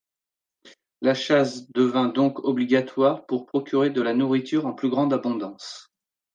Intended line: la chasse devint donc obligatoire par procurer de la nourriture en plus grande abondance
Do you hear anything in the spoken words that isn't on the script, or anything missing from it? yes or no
yes